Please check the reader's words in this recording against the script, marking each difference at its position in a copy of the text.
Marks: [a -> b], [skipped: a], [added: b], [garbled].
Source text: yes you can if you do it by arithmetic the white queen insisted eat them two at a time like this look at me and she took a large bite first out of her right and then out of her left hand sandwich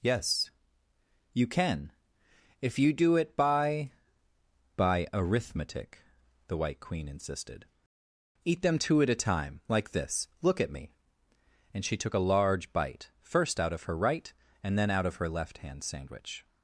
yes you can if you do it by [added: by] arithmetic the white queen insisted eat them two at a time like this look at me and she took a large bite first out of her right and then out of her left hand sandwich